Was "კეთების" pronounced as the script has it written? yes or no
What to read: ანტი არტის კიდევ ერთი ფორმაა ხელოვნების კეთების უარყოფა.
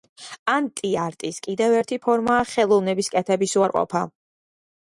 yes